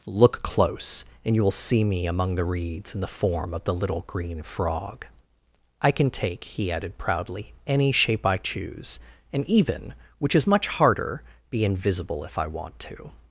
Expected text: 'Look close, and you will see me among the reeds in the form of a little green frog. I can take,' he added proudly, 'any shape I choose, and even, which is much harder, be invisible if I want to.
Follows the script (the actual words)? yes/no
no